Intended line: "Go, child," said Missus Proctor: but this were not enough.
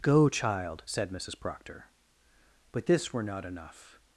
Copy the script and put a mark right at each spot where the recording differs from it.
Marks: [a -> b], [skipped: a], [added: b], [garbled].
"Go, child," said Missus Proctor: but this were not enough.